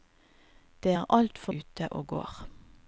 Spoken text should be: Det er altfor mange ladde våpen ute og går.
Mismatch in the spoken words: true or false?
true